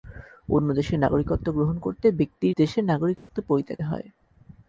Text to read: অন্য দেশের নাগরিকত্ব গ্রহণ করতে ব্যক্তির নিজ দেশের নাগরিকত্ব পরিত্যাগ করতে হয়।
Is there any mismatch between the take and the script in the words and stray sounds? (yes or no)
yes